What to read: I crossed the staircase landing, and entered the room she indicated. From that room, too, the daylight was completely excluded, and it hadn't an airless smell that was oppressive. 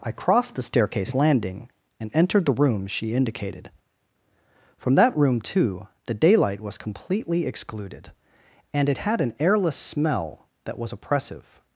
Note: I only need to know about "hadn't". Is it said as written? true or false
false